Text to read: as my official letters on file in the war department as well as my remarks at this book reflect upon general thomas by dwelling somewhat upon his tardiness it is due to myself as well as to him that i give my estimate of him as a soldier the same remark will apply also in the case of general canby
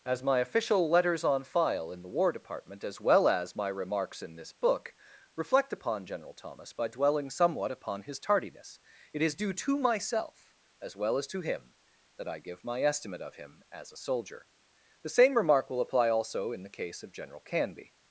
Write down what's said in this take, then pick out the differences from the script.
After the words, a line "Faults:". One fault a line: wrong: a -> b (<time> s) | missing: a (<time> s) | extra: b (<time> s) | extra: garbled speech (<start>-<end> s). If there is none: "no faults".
as my official letters on file in the war department as well as my remarks in this book reflect upon general thomas by dwelling somewhat upon his tardiness it is due to myself as well as to him that i give my estimate of him as a soldier the same remark will apply also in the case of general canby
Faults:
wrong: at -> in (4.2 s)